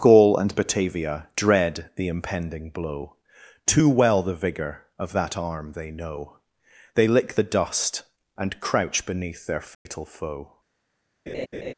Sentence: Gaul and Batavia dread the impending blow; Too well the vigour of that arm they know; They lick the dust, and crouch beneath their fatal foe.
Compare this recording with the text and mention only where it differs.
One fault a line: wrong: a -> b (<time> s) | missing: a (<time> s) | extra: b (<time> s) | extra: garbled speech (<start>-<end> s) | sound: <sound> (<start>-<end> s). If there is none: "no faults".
sound: dropout (9.7-9.9 s)
sound: laugh (11.3-11.7 s)